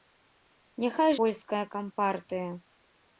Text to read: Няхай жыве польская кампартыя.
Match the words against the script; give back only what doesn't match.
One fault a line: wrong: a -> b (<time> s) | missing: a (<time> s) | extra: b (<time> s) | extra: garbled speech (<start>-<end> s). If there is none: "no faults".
missing: жыве (1.1 s)